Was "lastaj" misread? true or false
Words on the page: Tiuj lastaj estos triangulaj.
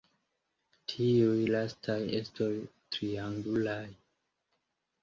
false